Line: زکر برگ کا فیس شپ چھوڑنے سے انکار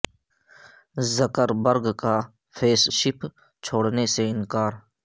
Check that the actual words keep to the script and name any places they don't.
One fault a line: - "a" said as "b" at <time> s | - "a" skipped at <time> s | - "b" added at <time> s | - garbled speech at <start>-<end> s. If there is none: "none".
none